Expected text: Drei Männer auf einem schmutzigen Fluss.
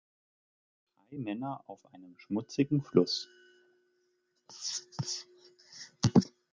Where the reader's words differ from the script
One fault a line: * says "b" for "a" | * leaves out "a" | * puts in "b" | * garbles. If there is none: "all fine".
all fine